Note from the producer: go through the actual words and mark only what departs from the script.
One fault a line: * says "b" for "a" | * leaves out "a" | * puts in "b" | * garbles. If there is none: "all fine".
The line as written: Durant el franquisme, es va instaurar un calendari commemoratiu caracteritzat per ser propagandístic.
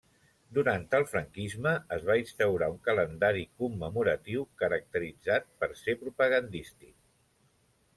all fine